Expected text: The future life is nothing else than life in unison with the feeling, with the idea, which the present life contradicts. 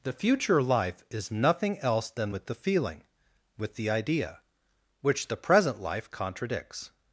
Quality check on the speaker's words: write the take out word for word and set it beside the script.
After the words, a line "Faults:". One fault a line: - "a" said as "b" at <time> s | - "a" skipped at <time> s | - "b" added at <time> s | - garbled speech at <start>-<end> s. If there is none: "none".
The future life is nothing else than with the feeling, with the idea, which the present life contradicts.
Faults:
- "life in unison" skipped at 2.3 s